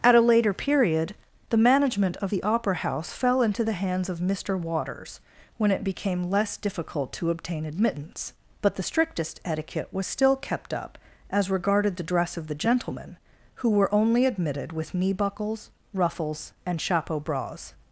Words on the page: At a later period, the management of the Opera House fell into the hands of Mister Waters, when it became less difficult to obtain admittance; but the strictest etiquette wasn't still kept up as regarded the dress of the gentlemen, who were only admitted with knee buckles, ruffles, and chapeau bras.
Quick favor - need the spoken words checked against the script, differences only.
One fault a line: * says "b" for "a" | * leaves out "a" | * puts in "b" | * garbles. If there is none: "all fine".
* says "was" for "wasn't"